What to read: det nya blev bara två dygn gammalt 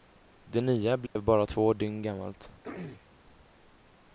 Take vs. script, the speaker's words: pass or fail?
pass